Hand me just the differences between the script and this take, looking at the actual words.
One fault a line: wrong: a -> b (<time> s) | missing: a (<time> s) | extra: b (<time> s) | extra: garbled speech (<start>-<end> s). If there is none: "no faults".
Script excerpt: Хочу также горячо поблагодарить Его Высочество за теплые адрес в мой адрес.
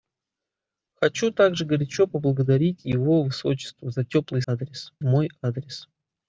no faults